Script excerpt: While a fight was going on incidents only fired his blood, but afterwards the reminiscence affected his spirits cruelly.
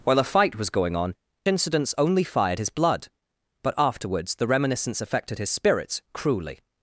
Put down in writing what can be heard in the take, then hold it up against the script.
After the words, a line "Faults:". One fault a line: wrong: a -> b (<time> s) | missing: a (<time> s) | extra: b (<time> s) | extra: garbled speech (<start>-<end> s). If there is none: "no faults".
While a fight was going on incidents only fired his blood, but afterwards the reminiscence affected his spirits cruelly.
Faults:
no faults